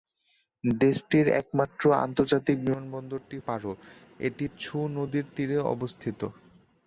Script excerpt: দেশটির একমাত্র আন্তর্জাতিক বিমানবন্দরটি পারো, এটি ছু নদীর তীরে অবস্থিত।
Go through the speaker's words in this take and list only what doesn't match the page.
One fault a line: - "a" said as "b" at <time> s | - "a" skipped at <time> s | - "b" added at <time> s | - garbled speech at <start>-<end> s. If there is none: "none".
none